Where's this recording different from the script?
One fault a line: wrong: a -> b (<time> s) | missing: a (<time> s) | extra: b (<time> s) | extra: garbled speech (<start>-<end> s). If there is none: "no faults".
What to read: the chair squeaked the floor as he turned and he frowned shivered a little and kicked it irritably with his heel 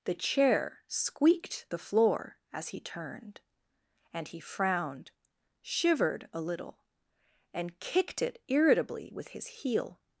no faults